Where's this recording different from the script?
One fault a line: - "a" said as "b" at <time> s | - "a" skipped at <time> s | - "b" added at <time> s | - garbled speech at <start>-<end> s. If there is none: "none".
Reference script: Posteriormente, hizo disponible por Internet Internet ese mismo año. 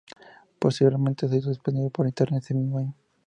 - "se" added at 1.3 s
- "Internet" skipped at 2.4 s